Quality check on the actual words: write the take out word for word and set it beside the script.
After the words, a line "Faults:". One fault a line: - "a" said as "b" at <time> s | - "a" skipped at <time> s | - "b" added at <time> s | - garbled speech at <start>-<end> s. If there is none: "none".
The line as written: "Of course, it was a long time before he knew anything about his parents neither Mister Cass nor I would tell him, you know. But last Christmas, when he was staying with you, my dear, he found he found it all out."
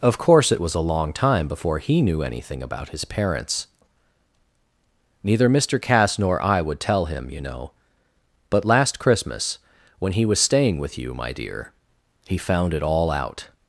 "Of course, it was a long time before he knew anything about his parents neither Mister Cass nor I would tell him, you know. But last Christmas, when he was staying with you, my dear, he found it all out."
Faults:
- "he found" skipped at 12.7 s